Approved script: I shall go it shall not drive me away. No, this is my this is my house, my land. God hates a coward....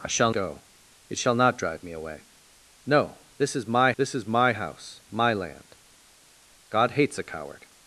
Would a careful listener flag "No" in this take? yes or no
no